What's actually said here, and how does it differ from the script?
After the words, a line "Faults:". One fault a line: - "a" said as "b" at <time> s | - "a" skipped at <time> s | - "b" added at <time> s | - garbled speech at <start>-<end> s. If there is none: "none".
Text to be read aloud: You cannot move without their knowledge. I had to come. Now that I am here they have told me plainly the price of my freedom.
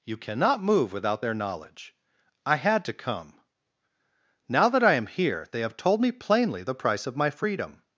You cannot move without their knowledge. I had to come. Now that I am here they have told me plainly the price of my freedom.
Faults:
none